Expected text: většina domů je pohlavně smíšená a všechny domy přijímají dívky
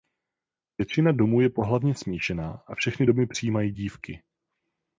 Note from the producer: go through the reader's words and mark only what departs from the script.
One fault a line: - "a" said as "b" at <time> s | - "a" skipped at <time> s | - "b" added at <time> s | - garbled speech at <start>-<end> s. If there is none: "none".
none